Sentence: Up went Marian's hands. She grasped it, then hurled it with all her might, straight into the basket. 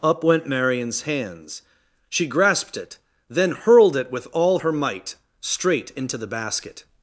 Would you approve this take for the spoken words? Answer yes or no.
yes